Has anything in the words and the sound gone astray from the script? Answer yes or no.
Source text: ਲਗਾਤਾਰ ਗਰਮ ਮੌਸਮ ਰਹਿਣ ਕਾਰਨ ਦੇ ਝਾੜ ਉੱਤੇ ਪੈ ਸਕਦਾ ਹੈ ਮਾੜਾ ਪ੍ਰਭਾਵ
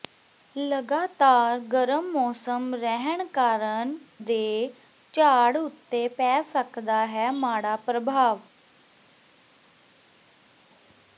no